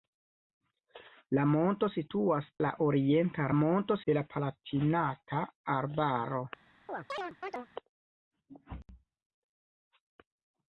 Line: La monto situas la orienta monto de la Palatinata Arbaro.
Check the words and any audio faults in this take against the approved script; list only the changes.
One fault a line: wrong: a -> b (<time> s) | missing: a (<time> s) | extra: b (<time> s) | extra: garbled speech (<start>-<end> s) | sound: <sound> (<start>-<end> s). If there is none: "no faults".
sound: chirp (6.9-7.7 s)